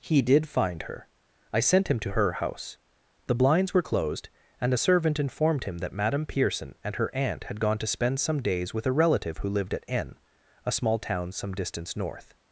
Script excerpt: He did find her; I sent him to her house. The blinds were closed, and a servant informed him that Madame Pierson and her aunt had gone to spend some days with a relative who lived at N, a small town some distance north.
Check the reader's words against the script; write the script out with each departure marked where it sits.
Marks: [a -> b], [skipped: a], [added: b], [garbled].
He did find her; I sent him to her house. The blinds were closed, and a servant informed him that Madame Pierson and her aunt had gone to spend some days with a relative who lived at N, a small town some distance north.